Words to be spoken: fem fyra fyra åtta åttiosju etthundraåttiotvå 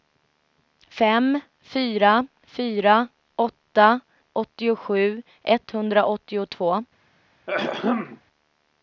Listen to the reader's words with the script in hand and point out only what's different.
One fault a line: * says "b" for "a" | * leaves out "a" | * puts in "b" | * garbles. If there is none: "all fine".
all fine